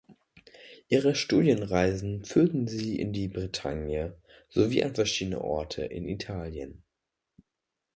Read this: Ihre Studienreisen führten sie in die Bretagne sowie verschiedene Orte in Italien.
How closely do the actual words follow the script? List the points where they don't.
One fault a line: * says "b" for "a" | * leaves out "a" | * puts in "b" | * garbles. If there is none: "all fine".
* puts in "an"